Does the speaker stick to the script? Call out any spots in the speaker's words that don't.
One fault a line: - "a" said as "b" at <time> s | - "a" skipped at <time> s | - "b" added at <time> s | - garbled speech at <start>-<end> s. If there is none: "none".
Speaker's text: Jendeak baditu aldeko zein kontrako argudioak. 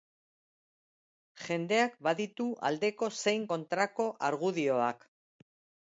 none